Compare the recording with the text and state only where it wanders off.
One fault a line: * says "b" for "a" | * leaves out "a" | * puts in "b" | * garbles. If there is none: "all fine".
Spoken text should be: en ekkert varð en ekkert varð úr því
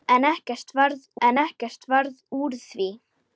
all fine